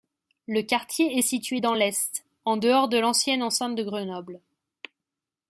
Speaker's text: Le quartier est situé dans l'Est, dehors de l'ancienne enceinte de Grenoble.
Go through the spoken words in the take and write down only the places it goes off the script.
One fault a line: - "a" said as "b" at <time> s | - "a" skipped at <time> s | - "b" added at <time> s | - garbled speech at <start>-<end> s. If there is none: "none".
- "en" added at 2.4 s